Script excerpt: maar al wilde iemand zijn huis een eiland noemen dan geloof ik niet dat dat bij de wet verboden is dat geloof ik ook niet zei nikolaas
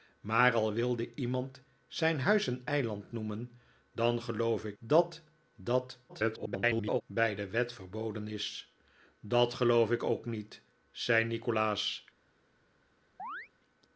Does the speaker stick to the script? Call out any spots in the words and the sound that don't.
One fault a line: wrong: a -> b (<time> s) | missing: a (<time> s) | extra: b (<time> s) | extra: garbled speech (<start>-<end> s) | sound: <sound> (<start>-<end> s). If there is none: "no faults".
missing: niet (4.8 s)
extra: garbled speech (6.1-7.0 s)
sound: chirp (13.2-13.5 s)